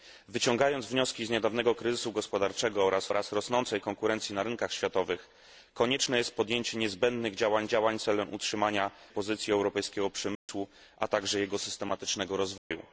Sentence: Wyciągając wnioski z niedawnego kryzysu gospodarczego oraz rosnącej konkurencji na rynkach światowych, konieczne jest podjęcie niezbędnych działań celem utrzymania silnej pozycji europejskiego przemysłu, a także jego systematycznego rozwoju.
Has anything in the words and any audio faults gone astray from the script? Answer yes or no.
yes